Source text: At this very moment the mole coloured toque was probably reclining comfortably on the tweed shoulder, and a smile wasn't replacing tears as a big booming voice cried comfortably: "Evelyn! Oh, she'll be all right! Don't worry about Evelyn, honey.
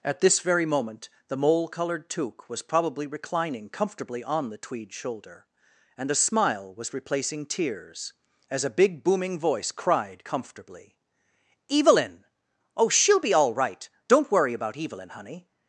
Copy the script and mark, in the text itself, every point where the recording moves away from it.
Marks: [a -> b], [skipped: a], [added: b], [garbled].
At this very moment the mole coloured toque was probably reclining comfortably on the tweed shoulder, and a smile [wasn't -> was] replacing tears as a big booming voice cried comfortably: "Evelyn! Oh, she'll be all right! Don't worry about Evelyn, honey.